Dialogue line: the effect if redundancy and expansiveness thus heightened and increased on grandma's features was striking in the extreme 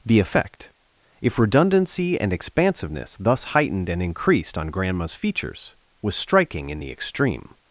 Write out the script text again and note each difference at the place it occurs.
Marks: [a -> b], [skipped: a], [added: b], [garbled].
the effect if redundancy and expansiveness thus heightened and increased on grandma's features was striking in the extreme